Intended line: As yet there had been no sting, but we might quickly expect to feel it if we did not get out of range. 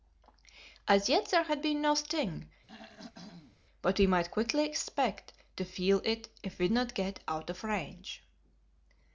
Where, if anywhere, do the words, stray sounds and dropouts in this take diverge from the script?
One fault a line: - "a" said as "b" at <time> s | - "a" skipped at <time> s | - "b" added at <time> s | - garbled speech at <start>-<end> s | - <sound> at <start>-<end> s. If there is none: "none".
- throat clearing at 2.7-3.6 s
- "did" skipped at 6.7 s